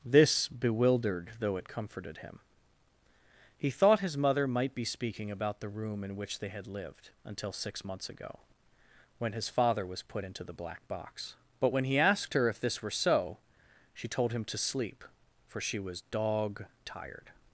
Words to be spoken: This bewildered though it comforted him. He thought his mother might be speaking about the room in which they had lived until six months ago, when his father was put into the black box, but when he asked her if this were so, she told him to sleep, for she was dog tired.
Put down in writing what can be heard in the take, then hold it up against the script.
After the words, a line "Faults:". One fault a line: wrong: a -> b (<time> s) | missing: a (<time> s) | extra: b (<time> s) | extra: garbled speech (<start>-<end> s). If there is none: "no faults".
This bewildered though it comforted him. He thought his mother might be speaking about the room in which they had lived until six months ago, when his father was put into the black box, but when he asked her if this were so, she told him to sleep, for she was dog tired.
Faults:
no faults